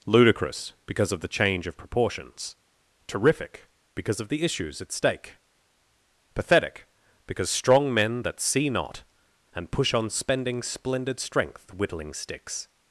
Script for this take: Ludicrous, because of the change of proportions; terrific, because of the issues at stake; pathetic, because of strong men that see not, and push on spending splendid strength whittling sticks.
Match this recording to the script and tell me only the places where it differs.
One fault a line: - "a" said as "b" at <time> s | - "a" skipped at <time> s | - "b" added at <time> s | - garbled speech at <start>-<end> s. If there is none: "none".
- "of" skipped at 7.5 s